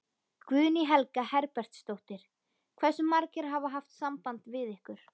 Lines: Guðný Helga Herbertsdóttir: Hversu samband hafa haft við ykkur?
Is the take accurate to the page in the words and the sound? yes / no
no